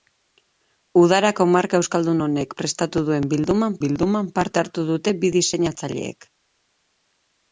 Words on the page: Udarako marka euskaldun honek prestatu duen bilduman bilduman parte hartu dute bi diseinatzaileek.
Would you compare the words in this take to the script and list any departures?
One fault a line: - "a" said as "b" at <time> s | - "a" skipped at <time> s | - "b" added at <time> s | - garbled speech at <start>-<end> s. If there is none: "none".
none